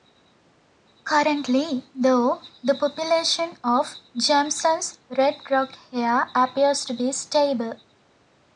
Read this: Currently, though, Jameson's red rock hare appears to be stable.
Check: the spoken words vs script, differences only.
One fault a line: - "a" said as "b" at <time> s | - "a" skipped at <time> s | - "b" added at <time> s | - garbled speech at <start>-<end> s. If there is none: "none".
- "the population of" added at 2.6 s